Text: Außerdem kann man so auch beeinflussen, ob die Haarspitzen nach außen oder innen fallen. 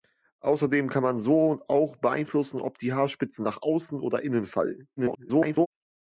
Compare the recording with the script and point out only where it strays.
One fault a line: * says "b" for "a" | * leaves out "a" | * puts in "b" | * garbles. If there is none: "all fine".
* garbles